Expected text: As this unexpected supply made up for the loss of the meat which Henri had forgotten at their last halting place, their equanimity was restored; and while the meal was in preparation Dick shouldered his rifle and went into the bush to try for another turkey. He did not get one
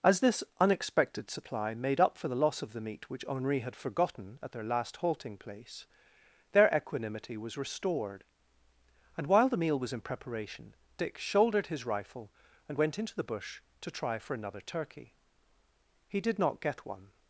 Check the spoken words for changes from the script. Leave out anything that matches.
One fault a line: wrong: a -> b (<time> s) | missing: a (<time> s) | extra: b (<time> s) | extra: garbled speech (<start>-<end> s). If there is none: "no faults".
no faults